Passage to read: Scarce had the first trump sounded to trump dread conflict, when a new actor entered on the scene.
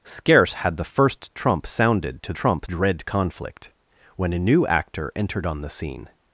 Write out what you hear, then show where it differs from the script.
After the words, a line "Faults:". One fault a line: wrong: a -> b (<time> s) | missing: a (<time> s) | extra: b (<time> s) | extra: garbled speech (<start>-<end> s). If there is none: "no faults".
Scarce had the first trump sounded to trump dread conflict, when a new actor entered on the scene.
Faults:
no faults